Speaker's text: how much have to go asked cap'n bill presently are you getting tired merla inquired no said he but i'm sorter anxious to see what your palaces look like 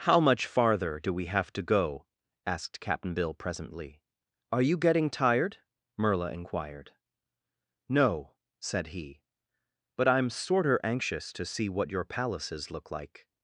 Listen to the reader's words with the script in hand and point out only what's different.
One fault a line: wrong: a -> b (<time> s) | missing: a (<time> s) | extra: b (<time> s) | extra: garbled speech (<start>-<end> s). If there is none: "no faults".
extra: farther do we (0.5 s)